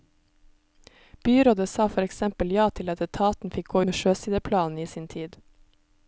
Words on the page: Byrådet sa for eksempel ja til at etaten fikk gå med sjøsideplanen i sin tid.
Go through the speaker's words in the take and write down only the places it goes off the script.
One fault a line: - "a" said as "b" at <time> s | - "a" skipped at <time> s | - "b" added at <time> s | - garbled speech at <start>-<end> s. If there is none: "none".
none